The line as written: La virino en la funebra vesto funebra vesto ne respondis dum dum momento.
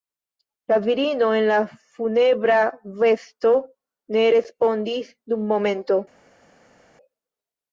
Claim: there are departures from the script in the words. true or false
true